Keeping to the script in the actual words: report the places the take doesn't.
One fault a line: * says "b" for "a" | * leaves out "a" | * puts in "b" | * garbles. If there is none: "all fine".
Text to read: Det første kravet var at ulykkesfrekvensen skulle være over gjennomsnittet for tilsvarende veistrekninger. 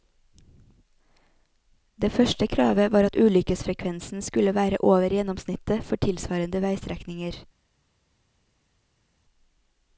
all fine